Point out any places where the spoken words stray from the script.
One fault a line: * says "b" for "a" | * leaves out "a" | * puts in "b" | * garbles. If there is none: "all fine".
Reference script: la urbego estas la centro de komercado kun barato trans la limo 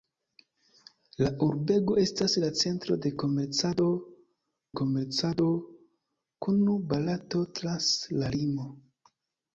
* puts in "komercado"